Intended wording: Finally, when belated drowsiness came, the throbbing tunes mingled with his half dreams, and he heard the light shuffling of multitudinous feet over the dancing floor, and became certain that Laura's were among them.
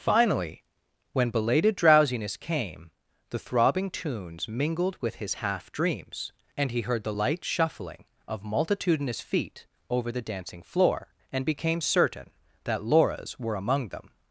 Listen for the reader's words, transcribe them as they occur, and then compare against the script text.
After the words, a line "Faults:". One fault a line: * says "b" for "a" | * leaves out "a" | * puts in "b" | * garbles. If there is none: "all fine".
Finally, when belated drowsiness came, the throbbing tunes mingled with his half dreams, and he heard the light shuffling of multitudinous feet over the dancing floor, and became certain that Laura's were among them.
Faults:
all fine